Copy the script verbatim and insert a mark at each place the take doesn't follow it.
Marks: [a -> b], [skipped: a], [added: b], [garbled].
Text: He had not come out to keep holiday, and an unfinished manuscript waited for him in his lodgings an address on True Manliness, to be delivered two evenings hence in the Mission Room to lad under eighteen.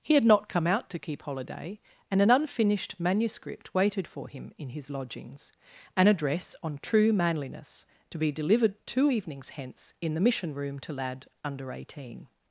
He had not come out to keep holiday, and an unfinished manuscript waited for him in his lodgings an address on True Manliness, to be delivered two evenings hence in the Mission Room to lad under eighteen.